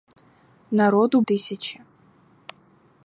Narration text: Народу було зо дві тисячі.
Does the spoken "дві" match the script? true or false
false